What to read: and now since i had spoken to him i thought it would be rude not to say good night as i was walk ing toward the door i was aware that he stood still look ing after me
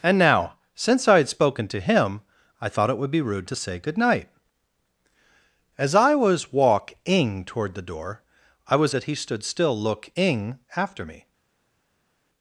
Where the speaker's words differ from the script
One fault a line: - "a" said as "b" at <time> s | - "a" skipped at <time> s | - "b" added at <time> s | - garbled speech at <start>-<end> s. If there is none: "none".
- "not" skipped at 3.5 s
- "aware" skipped at 8.9 s